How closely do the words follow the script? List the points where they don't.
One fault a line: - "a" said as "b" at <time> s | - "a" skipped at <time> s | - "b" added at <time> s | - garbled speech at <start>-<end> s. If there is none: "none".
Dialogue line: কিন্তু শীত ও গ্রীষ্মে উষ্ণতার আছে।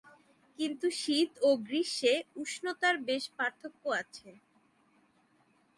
- "বেশ পার্থক্য" added at 3.1 s